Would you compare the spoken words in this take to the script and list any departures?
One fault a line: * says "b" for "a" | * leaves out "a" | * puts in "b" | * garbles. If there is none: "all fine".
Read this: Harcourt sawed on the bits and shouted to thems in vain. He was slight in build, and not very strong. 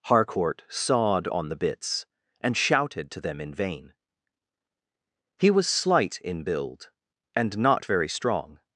* says "them" for "thems"